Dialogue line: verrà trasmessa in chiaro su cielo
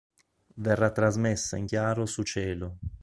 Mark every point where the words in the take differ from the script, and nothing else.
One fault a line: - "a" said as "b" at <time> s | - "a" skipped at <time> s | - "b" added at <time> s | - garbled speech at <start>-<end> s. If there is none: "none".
none